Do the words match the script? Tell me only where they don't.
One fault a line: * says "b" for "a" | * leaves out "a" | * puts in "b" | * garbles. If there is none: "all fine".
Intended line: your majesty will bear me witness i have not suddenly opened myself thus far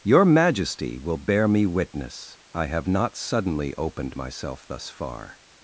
all fine